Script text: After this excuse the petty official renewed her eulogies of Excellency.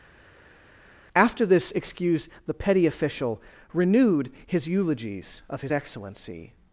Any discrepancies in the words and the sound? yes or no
yes